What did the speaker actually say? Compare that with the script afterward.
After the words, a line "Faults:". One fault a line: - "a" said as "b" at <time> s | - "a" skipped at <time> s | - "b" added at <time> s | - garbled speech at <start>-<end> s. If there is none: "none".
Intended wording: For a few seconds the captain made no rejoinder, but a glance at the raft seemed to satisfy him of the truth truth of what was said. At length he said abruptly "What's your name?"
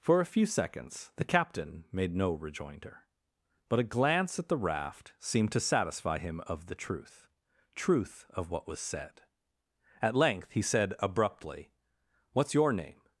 For a few seconds the captain made no rejoinder, but a glance at the raft seemed to satisfy him of the truth truth of what was said. At length he said abruptly "What's your name?"
Faults:
none